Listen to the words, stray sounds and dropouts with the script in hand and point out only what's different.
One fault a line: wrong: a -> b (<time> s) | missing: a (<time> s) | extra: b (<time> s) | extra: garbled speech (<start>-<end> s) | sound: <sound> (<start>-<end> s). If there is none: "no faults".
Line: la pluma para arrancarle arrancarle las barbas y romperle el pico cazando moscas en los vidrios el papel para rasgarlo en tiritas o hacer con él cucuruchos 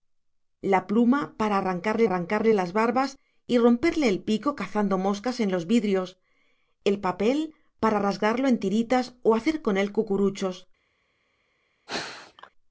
sound: sneeze (11.9-12.5 s)